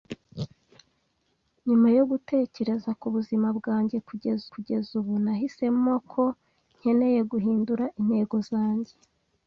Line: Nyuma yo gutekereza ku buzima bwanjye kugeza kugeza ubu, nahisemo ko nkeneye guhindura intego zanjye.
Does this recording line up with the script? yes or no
yes